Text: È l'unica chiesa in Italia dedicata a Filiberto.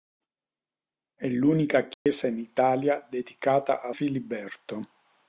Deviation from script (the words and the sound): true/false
true